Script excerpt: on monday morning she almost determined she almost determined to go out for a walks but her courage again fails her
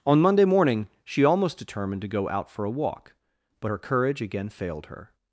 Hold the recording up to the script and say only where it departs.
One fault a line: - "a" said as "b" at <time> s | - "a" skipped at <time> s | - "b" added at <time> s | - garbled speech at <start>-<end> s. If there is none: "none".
- "she almost determined" skipped at 2.0 s
- "walks" said as "walk" at 2.7 s
- "fails" said as "failed" at 4.5 s